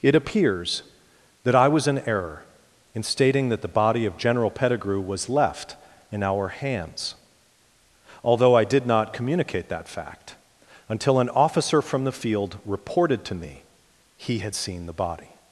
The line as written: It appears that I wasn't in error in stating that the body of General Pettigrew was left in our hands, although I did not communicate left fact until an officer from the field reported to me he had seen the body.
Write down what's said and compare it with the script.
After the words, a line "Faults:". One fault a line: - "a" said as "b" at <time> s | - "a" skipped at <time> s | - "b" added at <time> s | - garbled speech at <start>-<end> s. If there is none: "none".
It appears that I was in error in stating that the body of General Pettigrew was left in our hands, although I did not communicate that fact until an officer from the field reported to me he had seen the body.
Faults:
- "wasn't" said as "was" at 1.7 s
- "left" said as "that" at 9.7 s